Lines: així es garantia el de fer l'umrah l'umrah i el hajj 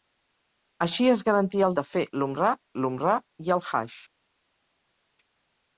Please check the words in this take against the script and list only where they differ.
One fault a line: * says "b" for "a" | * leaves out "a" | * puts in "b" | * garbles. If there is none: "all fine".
all fine